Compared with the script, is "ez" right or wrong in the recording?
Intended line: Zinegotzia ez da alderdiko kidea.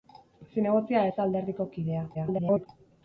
right